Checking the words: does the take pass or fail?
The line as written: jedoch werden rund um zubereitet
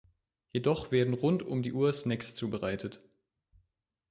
fail